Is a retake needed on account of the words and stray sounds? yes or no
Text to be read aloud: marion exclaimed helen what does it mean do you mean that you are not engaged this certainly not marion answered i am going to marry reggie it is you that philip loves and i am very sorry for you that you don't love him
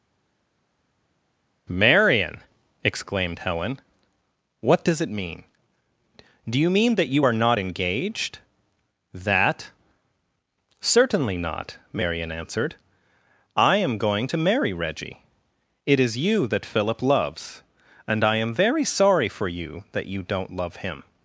yes